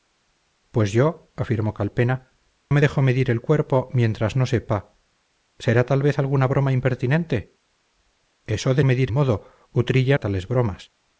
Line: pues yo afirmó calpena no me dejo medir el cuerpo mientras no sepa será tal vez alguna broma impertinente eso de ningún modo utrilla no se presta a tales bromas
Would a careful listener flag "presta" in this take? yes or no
yes